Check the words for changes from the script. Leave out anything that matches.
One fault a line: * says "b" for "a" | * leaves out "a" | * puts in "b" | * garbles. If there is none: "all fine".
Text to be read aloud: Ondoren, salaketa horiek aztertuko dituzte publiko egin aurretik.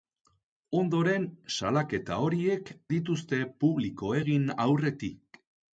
* leaves out "aztertuko"